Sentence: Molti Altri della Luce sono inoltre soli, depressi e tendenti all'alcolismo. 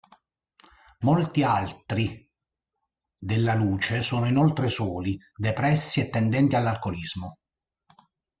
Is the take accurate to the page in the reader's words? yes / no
yes